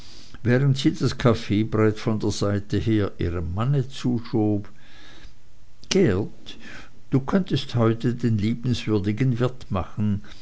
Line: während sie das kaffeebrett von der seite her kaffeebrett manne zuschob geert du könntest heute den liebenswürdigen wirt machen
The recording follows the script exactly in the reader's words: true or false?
false